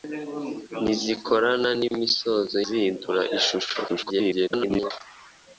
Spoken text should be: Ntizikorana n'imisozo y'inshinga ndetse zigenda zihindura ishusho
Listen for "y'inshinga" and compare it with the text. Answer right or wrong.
wrong